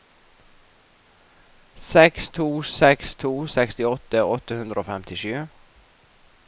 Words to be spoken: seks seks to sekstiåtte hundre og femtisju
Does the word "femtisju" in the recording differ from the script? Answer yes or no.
no